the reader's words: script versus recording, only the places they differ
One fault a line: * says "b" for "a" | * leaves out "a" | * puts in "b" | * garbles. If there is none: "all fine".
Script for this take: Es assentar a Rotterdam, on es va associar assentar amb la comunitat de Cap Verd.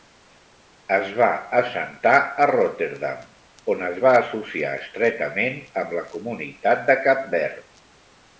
* puts in "va"
* says "estretament" for "assentar"